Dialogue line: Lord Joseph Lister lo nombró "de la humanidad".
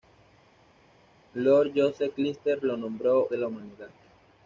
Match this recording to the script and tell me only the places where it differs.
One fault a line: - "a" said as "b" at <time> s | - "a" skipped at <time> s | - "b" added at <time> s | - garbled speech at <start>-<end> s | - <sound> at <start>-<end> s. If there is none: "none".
none